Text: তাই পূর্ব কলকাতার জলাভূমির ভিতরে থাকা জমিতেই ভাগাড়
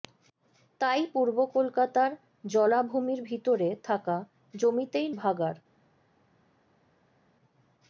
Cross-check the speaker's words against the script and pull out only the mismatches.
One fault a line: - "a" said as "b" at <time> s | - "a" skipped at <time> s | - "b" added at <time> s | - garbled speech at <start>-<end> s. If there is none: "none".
none